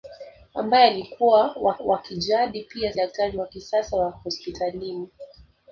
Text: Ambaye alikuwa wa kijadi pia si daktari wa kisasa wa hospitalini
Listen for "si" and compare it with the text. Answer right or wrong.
wrong